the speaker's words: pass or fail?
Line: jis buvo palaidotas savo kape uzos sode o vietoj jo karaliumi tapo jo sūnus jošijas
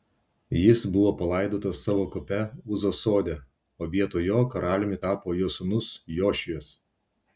pass